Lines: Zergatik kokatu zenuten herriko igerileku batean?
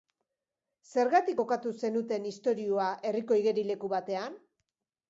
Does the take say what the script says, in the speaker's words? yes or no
no